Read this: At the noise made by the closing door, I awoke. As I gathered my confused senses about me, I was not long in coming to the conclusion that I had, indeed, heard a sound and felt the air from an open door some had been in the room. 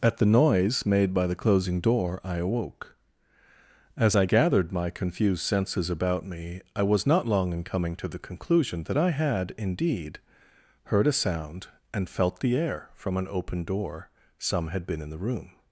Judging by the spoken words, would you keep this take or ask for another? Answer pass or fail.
pass